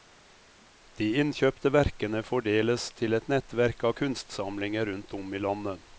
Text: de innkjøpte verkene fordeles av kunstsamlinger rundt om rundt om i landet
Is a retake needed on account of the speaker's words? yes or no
yes